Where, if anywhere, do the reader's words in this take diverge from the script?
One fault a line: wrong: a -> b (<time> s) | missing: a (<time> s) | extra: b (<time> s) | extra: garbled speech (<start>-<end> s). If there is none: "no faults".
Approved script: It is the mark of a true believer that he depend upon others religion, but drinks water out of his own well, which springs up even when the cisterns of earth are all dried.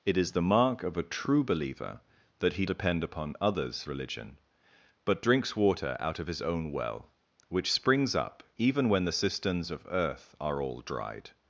no faults